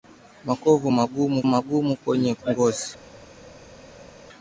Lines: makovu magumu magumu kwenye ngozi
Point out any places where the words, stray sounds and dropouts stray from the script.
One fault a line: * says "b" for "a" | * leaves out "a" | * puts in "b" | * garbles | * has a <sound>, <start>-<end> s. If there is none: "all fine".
all fine